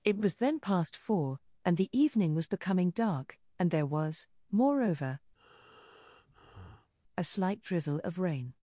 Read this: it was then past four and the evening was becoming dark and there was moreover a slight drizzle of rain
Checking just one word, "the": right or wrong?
right